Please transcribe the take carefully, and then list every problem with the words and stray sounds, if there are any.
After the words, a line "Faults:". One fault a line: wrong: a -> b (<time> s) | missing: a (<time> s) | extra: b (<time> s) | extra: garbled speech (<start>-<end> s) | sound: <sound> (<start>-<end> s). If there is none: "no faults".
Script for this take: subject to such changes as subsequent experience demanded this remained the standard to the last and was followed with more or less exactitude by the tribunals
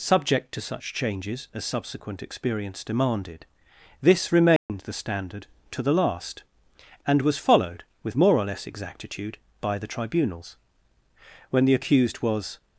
subject to such changes as subsequent experience demanded this remained the standard to the last and was followed with more or less exactitude by the tribunals when the accused was
Faults:
sound: dropout (4.6-4.7 s)
extra: when the accused was (11.5 s)